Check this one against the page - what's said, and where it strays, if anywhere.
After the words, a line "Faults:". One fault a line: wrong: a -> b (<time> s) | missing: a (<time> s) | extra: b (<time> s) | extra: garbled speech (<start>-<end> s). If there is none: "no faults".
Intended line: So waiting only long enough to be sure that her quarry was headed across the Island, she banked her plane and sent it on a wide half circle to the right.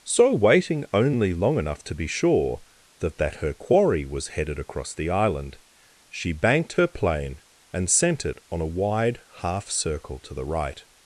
So waiting only long enough to be sure that that her quarry was headed across the Island, she banked her plane and sent it on a wide half circle to the right.
Faults:
extra: that (3.2 s)